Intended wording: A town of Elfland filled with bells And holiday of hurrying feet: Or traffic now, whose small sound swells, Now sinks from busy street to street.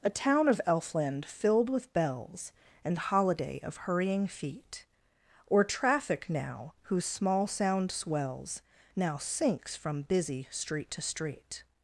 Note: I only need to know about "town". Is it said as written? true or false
true